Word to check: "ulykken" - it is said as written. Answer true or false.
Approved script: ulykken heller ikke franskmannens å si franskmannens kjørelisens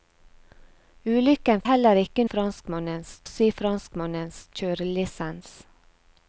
true